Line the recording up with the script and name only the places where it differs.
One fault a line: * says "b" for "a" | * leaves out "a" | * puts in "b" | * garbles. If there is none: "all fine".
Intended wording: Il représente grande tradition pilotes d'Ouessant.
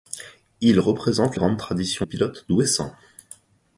all fine